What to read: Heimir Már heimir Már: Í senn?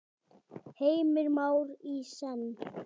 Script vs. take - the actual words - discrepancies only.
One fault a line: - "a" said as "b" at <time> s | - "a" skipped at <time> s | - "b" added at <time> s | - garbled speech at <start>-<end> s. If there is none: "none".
- "heimir Már" skipped at 1.7 s